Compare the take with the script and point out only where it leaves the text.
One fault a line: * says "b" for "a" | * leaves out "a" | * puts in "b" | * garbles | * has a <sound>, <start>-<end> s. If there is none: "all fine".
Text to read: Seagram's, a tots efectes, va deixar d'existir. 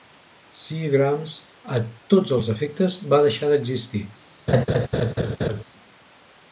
* puts in "els"
* has a laugh, 4.5-5.6 s